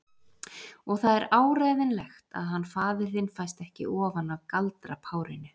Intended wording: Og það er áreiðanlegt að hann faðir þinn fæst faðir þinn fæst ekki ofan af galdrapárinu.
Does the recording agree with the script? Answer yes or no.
no